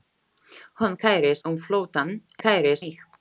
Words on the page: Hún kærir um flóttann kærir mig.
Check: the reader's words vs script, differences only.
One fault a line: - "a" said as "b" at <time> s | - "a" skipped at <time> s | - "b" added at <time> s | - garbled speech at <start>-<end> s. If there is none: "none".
none